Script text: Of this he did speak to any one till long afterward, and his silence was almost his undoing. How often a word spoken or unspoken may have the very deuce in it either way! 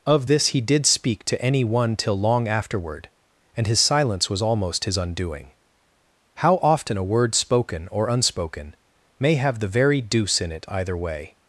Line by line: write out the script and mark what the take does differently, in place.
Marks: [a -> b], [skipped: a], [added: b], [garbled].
Of this he did speak to any one till long afterward, and his silence was almost his undoing. How often a word spoken or unspoken may have the very deuce in it either way!